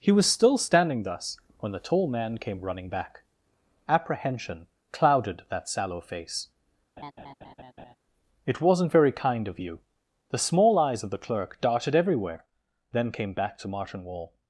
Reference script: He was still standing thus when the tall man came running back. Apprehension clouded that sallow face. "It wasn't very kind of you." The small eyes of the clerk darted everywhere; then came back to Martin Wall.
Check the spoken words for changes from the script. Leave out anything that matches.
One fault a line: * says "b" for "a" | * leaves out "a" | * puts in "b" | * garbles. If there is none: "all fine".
all fine